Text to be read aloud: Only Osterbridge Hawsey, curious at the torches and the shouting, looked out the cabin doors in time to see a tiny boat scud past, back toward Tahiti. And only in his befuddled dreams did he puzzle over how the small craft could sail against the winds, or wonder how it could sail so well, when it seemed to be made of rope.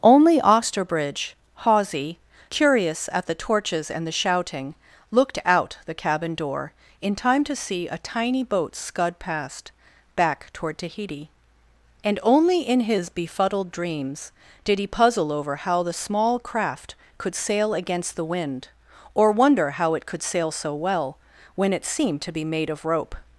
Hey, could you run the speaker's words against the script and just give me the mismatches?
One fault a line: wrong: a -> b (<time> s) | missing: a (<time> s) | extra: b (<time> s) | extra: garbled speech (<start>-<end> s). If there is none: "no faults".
wrong: doors -> door (6.3 s)
wrong: winds -> wind (18.3 s)